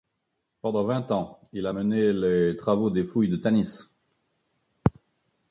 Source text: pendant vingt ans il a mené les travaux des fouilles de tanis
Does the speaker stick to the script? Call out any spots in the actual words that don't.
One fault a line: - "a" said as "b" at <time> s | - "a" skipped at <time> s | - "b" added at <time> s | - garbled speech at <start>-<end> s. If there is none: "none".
none